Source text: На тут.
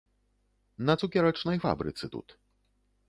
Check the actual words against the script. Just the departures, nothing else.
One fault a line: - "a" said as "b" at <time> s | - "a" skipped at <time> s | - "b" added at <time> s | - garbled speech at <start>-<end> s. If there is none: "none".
- "цукерачнай фабрыцы" added at 1.0 s